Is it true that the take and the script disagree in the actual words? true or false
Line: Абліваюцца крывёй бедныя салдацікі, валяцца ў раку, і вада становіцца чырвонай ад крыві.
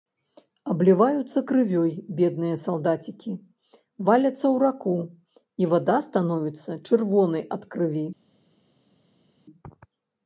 false